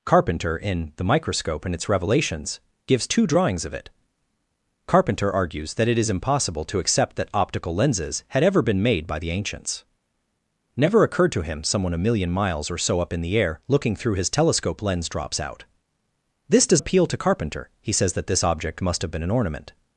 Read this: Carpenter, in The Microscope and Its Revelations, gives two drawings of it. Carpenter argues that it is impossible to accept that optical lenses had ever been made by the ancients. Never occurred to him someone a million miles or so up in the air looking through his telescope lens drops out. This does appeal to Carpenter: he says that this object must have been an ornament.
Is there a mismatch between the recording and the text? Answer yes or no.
no